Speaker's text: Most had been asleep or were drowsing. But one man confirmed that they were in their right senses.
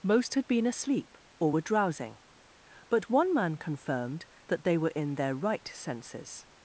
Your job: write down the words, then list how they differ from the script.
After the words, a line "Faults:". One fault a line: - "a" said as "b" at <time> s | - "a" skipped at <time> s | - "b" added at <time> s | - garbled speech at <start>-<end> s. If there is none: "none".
Most had been asleep or were drowsing. But one man confirmed that they were in their right senses.
Faults:
none